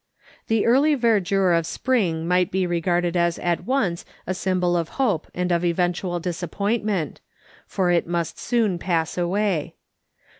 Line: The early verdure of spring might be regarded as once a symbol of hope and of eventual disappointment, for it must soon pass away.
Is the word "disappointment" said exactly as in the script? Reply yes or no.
yes